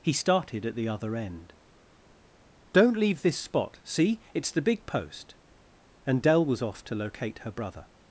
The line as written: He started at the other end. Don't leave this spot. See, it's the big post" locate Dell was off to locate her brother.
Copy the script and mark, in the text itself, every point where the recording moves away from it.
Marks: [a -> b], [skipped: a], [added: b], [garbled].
He started at the other end. Don't leave this spot. See, it's the big post" [locate -> and] Dell was off to locate her brother.